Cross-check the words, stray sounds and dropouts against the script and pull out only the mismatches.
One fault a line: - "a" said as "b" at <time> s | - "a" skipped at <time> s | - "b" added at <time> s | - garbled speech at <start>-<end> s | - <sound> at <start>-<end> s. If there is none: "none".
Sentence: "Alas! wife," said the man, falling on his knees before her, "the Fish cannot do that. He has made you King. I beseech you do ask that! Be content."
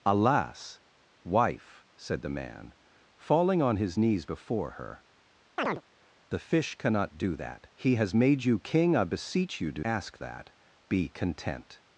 - chirp at 5.6-5.8 s